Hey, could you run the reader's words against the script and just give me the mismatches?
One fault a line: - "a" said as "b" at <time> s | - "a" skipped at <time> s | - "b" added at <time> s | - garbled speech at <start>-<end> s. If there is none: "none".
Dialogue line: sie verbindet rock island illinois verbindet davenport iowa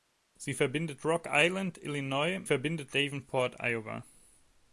none